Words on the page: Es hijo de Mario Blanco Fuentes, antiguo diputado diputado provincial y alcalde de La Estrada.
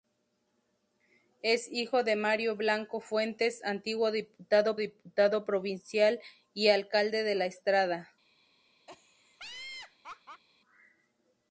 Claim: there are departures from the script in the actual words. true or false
false